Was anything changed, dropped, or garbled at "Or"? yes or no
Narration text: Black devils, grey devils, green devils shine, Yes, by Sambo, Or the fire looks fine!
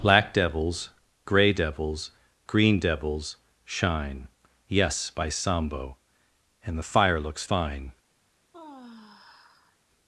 yes